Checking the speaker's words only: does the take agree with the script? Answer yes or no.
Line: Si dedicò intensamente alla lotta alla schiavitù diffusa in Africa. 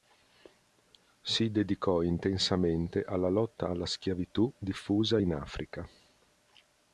yes